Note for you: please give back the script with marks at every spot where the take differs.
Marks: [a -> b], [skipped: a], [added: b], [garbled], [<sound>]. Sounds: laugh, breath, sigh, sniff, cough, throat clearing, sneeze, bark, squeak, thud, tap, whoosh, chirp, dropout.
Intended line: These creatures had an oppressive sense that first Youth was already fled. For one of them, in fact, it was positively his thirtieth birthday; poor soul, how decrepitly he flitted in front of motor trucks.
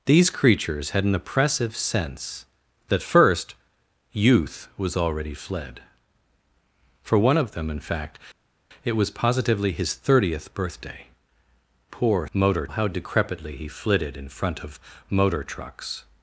These creatures had an oppressive sense that first Youth was already fled. For one of them, in fact, it was positively his thirtieth birthday; poor [soul, -> motor] how decrepitly he flitted in front of motor trucks.